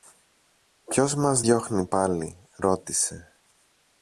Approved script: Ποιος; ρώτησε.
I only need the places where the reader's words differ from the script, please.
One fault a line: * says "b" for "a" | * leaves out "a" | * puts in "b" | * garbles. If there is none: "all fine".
* puts in "μας διώχνει πάλι"